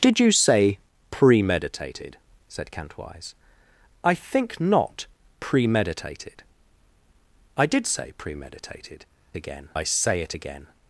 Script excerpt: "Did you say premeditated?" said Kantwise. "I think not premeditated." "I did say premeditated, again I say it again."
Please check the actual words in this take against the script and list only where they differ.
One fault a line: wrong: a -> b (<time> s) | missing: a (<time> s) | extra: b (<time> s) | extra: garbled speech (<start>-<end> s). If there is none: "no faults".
no faults